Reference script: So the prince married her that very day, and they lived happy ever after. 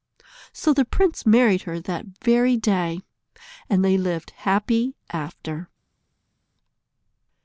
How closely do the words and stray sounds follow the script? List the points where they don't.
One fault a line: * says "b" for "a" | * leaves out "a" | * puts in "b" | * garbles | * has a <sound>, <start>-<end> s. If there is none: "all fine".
* leaves out "ever"